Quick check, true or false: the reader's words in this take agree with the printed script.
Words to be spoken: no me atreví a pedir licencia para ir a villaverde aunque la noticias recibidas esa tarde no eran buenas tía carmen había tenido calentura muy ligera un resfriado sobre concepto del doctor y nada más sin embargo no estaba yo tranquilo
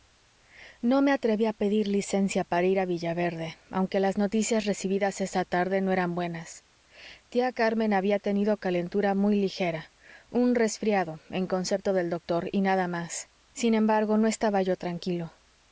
false